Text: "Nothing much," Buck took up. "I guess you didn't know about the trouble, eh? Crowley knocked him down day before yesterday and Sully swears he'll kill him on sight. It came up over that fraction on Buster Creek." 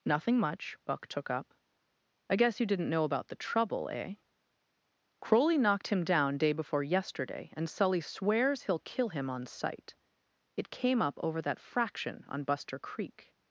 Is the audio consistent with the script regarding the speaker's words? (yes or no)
yes